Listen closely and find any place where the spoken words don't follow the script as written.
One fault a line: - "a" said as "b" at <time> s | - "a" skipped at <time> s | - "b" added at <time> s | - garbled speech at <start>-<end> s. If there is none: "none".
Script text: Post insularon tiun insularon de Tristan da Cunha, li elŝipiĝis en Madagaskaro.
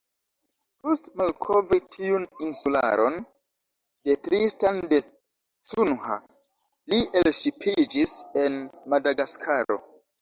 - "insularon" said as "malkovri" at 1.2 s